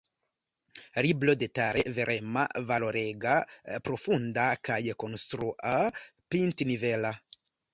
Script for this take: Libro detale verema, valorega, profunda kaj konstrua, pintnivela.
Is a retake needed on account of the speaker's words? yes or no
no